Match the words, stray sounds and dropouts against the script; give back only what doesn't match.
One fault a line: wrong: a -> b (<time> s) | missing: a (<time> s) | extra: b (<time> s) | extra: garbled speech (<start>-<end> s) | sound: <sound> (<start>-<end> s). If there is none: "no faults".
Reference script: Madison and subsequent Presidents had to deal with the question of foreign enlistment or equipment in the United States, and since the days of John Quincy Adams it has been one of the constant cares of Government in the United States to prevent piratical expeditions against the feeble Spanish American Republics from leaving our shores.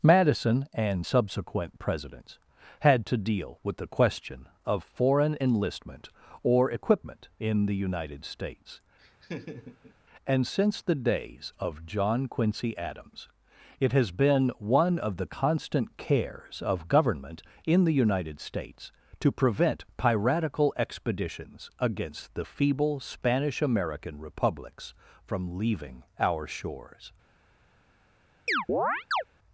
sound: laugh (9.0-9.9 s)
sound: chirp (28.5-29.2 s)